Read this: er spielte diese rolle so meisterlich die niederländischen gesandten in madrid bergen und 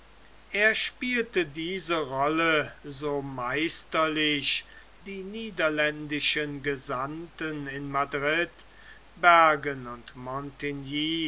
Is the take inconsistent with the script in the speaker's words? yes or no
no